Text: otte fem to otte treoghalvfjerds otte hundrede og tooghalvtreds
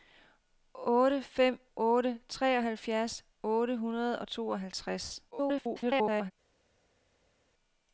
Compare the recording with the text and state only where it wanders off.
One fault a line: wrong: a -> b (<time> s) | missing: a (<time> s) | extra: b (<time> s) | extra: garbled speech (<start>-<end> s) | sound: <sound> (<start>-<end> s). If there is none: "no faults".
missing: to (1.6 s)
extra: garbled speech (5.3-6.3 s)